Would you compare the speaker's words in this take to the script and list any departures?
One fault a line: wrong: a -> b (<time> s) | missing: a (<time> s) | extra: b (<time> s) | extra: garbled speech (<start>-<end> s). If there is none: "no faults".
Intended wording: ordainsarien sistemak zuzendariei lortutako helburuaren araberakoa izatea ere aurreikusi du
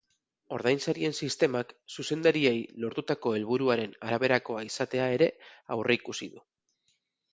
no faults